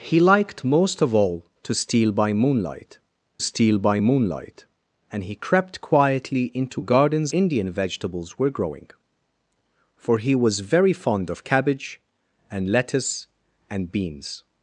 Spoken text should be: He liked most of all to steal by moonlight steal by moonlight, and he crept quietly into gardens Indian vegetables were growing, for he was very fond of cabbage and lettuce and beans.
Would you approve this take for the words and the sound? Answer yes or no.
yes